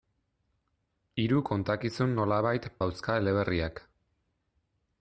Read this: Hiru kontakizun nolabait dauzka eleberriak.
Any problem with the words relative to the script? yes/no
no